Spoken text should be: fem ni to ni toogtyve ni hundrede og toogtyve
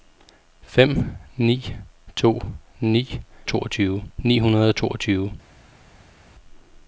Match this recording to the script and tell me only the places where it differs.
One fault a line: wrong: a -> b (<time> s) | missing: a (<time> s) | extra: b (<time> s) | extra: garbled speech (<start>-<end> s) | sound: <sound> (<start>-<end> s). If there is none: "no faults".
no faults